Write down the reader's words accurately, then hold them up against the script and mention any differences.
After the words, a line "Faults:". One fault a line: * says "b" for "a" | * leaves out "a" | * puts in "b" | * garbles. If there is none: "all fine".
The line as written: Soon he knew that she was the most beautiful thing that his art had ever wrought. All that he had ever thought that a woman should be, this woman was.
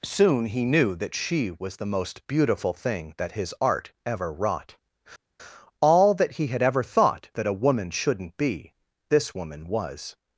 Soon he knew that she was the most beautiful thing that his art ever wrought. All that he had ever thought that a woman shouldn't be, this woman was.
Faults:
* leaves out "had"
* says "shouldn't" for "should"